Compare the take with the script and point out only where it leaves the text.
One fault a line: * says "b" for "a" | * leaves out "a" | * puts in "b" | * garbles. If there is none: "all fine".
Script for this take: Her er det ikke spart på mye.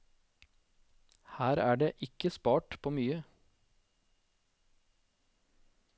all fine